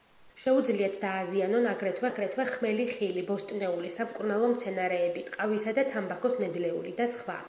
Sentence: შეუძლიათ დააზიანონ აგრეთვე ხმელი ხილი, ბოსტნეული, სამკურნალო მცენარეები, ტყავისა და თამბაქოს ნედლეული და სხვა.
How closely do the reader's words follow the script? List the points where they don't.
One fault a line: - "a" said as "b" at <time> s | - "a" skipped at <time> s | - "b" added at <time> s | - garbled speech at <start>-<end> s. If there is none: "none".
- "აგრეთვე" added at 2.1 s